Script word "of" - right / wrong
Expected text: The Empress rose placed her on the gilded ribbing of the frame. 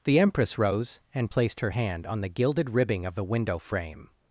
right